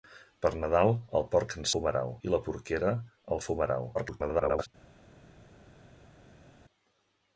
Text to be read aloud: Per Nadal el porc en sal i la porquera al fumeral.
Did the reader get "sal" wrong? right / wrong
wrong